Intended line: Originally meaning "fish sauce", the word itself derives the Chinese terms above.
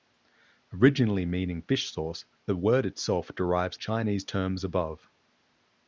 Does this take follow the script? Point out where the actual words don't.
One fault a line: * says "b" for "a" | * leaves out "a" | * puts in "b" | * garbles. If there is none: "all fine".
* leaves out "the"